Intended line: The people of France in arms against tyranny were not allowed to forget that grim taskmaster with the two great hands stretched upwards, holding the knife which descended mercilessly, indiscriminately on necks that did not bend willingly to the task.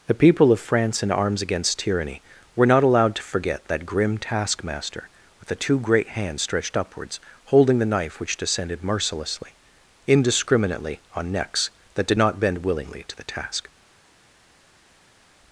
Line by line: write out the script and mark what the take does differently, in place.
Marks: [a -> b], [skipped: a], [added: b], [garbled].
The people of France in arms against tyranny were not allowed to forget that grim taskmaster with the two great hands stretched upwards, holding the knife which descended mercilessly, indiscriminately on necks that did not bend willingly to the task.